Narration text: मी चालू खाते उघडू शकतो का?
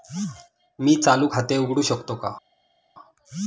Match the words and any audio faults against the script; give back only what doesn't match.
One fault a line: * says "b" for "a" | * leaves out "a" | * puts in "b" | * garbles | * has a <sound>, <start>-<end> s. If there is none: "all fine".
all fine